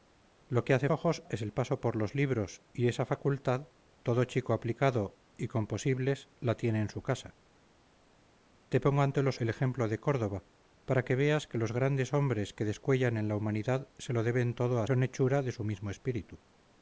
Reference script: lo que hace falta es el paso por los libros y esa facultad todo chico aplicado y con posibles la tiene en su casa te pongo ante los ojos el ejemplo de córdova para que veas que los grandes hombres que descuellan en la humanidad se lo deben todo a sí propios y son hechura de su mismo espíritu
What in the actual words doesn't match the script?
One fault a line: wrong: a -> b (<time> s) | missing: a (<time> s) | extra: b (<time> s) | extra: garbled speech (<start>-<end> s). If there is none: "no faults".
wrong: falta -> ojos (0.9 s)
missing: ojos (9.4 s)
missing: sí propios y (14.9 s)